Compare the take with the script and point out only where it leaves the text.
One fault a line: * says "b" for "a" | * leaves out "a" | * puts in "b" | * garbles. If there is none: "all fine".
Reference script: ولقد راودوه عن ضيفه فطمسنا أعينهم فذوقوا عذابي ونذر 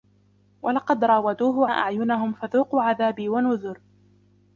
* leaves out "عن ضيفه فطمسنا"